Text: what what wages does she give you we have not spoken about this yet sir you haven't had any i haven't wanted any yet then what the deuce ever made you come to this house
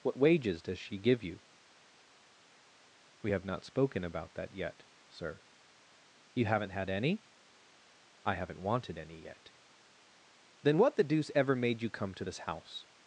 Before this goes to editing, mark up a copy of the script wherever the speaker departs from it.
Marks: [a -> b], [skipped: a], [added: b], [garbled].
what [skipped: what] wages does she give you we have not spoken about [this -> that] yet sir you haven't had any i haven't wanted any yet then what the deuce ever made you come to this house